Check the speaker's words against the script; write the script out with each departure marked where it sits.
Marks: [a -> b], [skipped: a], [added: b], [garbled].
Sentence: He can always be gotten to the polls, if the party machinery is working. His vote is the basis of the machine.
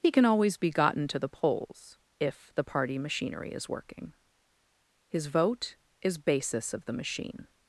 He can always be gotten to the polls, if the party machinery is working. His vote is [skipped: the] basis of the machine.